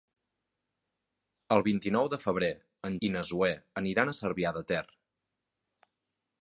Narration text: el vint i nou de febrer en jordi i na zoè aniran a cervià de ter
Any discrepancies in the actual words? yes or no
yes